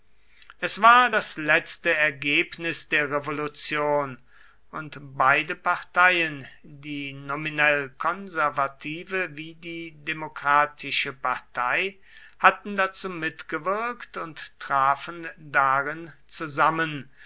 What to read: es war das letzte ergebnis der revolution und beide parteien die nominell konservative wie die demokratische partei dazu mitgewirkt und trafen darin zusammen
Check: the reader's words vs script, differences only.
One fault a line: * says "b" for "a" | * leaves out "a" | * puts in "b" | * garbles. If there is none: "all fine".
* puts in "hatten"